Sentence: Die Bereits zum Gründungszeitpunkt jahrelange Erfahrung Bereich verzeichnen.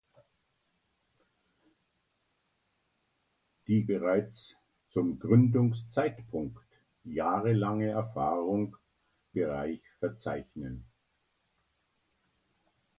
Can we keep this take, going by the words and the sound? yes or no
yes